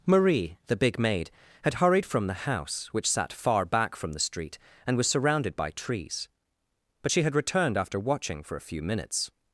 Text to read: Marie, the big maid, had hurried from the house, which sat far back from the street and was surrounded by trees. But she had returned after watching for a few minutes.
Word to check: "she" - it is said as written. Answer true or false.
true